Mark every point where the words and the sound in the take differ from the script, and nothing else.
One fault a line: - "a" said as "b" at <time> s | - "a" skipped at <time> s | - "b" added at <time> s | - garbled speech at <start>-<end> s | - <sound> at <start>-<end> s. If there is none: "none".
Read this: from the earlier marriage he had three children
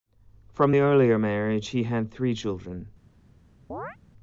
- chirp at 3.7-4.0 s